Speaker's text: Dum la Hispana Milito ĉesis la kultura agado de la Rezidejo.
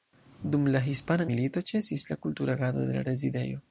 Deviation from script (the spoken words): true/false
false